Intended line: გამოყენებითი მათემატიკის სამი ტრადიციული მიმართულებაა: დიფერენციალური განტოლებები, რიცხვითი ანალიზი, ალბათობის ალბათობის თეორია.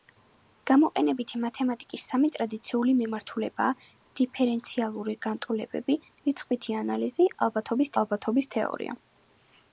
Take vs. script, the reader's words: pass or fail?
pass